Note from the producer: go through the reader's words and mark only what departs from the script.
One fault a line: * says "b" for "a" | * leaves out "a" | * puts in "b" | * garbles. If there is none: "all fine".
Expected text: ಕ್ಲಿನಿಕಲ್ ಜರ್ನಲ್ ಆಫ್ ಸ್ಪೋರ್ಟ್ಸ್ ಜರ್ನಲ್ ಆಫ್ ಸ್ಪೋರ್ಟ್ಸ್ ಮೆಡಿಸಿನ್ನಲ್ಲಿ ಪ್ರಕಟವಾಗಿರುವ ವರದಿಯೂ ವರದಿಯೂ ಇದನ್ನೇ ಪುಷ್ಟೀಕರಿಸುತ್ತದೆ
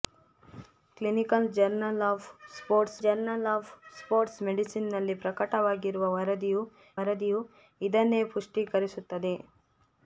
all fine